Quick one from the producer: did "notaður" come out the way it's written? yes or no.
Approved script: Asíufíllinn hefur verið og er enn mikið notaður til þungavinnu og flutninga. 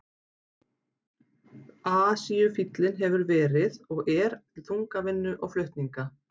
no